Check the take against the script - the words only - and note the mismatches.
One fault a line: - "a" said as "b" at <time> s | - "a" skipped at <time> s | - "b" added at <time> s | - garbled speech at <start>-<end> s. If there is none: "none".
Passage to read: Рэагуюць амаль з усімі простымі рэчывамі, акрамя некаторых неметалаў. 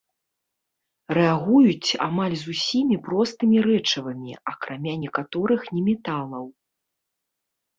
none